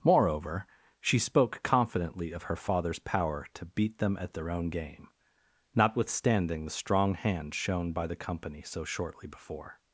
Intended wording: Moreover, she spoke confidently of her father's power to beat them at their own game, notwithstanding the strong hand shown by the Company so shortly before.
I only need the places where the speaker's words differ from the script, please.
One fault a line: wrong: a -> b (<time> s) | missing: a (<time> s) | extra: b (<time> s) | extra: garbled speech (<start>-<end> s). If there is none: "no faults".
no faults